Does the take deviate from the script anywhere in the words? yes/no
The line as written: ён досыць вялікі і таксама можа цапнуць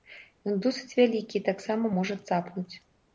no